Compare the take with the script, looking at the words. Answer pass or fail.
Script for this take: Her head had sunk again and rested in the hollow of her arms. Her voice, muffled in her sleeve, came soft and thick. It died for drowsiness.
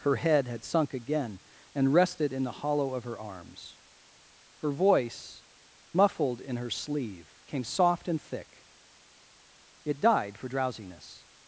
pass